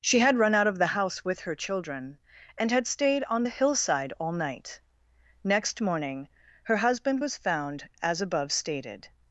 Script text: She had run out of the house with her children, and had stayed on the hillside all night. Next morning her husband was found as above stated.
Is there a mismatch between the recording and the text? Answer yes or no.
no